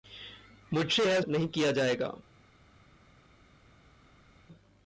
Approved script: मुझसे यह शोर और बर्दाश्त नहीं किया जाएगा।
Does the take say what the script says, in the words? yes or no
no